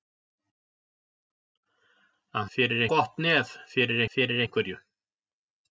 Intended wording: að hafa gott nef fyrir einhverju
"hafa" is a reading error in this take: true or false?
true